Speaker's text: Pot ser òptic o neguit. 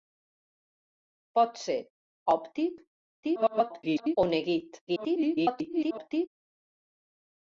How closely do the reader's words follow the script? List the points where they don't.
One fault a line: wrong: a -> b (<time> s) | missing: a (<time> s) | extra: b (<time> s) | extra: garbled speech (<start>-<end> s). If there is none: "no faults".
extra: garbled speech (3.2-4.2 s)
extra: garbled speech (4.9-6.3 s)